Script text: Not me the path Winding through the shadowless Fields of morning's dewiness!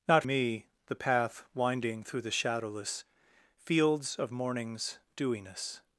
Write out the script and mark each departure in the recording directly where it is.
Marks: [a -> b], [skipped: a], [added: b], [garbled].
Not me the path Winding through the shadowless Fields of morning's dewiness!